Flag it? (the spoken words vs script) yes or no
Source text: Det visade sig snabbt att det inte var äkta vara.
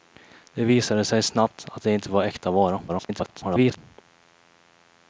yes